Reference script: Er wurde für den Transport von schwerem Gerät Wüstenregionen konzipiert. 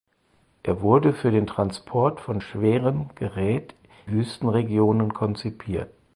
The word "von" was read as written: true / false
true